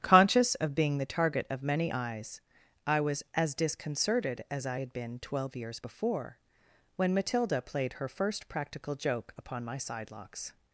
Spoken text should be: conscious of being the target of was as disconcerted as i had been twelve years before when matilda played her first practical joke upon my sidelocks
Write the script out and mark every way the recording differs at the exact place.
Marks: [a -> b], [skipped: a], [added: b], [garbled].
conscious of being the target of [added: many eyes i] was as disconcerted as i had been twelve years before when matilda played her first practical joke upon my sidelocks